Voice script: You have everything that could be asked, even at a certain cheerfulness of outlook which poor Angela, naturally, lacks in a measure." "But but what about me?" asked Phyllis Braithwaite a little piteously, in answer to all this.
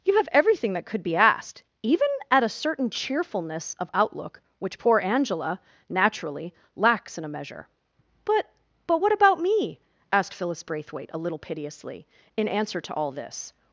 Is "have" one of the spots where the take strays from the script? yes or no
no